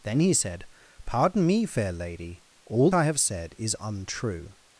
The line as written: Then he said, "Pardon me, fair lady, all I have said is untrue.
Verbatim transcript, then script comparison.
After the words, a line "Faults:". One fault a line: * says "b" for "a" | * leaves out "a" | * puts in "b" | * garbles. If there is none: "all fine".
Then he said, "Pardon me, fair lady, all I have said is untrue.
Faults:
all fine